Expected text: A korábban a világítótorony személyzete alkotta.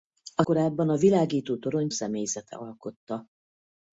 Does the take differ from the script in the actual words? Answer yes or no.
no